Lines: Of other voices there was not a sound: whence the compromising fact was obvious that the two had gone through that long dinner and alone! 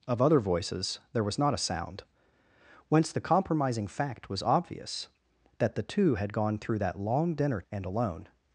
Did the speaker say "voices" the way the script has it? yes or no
yes